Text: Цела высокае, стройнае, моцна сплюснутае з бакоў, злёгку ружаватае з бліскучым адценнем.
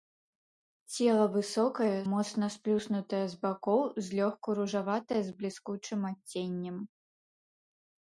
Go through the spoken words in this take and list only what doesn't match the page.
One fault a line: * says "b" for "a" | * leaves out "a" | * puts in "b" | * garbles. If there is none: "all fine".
* leaves out "стройнае"